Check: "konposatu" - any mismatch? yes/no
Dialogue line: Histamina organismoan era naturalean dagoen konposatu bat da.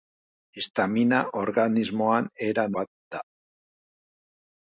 yes